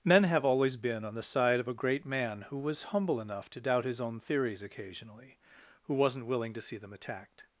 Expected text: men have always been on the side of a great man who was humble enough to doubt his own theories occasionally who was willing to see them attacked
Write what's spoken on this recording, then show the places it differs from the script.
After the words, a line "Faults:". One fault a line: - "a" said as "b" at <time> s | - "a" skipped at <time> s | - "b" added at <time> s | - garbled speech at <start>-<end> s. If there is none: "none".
men have always been on the side of a great man who was humble enough to doubt his own theories occasionally who wasn't willing to see them attacked
Faults:
- "was" said as "wasn't" at 5.9 s